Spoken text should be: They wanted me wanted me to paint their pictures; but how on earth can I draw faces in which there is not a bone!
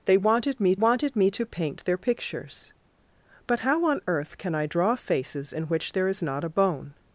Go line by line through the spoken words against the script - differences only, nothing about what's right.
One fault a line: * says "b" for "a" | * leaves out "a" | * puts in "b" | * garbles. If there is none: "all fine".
all fine